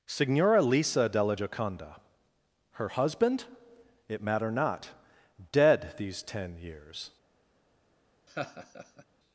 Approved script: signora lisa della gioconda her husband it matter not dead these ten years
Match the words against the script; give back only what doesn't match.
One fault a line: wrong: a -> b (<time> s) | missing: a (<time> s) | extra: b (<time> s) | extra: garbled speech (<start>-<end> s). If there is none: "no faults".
no faults